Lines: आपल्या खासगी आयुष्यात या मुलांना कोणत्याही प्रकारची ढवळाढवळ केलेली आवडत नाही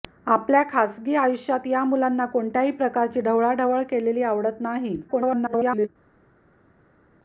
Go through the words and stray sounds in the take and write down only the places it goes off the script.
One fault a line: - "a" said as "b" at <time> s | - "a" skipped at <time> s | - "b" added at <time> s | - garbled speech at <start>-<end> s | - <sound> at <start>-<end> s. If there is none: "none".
- garbled speech at 5.1-5.9 s